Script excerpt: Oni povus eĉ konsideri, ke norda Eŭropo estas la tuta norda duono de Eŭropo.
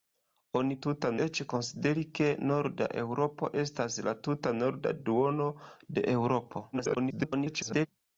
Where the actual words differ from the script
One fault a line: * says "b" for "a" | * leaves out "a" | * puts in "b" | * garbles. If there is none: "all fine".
* says "tuta" for "povus"
* garbles